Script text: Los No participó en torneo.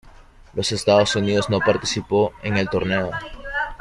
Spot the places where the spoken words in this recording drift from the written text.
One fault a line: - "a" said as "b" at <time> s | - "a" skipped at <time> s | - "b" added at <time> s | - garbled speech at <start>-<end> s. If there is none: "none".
- "Estados Unidos" added at 0.7 s
- "el" added at 2.6 s